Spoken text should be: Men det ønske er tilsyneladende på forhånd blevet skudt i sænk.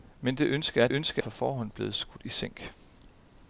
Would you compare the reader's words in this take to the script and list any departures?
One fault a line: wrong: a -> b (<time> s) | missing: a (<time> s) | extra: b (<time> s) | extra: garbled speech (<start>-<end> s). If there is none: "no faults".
wrong: tilsyneladende -> ønske (0.9 s)